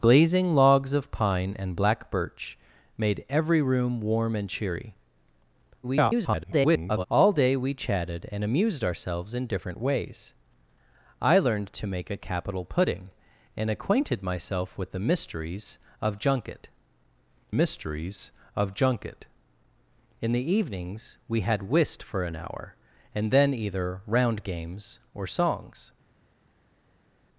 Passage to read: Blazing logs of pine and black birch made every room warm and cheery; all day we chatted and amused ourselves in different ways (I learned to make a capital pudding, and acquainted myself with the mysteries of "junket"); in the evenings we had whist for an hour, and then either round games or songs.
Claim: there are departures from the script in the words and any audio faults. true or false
true